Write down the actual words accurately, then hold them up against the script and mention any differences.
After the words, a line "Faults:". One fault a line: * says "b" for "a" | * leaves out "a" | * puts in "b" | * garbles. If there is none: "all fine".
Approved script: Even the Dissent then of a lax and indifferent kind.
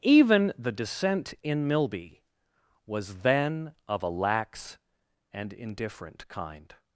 Even the Dissent in Milby was then of a lax and indifferent kind.
Faults:
* puts in "in Milby was"